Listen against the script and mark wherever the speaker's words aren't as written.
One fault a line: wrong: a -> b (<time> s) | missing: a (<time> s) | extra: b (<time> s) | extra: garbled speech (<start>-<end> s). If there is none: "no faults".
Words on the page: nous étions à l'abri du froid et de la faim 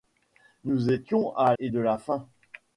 missing: l'abri du froid (1.5 s)